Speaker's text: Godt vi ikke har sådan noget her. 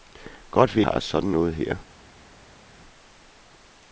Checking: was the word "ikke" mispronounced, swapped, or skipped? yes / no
yes